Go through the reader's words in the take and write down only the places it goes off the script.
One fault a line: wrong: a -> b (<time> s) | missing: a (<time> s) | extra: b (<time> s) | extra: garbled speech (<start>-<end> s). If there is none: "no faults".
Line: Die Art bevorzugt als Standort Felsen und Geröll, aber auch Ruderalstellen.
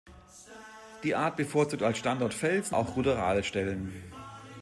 missing: und Geröll aber (2.8 s)